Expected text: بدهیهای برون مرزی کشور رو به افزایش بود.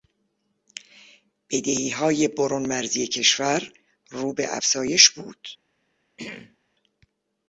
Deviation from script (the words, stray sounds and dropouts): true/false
true